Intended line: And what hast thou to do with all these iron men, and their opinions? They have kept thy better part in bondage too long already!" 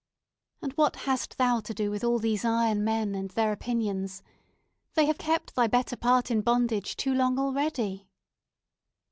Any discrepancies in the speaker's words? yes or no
no